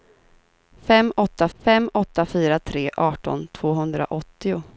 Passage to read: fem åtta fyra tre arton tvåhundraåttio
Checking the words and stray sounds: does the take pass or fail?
fail